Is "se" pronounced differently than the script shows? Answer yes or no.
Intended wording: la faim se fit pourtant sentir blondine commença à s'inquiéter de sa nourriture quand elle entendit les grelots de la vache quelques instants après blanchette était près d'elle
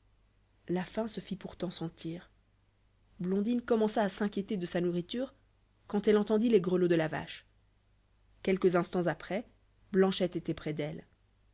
no